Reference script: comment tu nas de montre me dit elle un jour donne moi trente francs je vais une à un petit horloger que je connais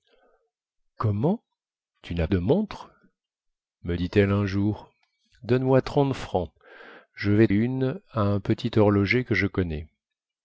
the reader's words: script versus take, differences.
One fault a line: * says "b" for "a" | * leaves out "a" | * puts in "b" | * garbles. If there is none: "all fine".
all fine